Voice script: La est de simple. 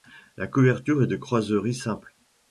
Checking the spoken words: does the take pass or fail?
fail